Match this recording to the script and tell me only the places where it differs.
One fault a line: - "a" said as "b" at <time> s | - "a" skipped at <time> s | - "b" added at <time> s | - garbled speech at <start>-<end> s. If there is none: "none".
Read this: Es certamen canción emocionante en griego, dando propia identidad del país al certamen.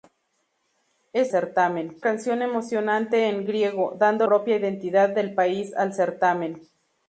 none